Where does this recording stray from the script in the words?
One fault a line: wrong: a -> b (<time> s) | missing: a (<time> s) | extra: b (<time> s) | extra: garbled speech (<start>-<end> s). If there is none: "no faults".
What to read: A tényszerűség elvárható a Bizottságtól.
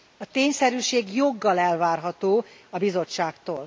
extra: joggal (1.1 s)